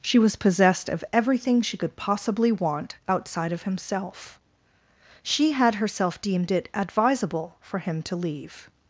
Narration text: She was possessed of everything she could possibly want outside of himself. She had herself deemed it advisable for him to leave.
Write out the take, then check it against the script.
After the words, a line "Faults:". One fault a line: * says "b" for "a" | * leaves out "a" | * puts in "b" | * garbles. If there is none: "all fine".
She was possessed of everything she could possibly want outside of himself. She had herself deemed it advisable for him to leave.
Faults:
all fine